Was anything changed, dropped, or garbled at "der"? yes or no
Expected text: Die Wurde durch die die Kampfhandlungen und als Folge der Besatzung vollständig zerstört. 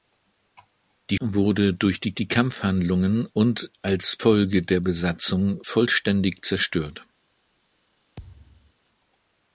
no